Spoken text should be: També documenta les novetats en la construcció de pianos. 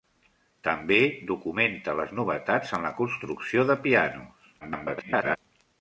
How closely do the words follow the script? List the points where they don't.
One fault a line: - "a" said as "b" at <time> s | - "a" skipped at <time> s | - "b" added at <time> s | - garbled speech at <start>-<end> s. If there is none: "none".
- garbled speech at 4.6-5.4 s